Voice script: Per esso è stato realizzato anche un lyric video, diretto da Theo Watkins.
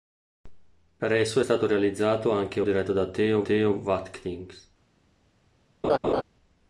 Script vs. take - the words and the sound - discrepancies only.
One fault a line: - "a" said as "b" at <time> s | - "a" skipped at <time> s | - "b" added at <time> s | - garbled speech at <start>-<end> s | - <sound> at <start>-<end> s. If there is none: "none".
- "un lyric video" skipped at 2.6 s
- "Theo" added at 3.4 s
- laugh at 5.8-6.2 s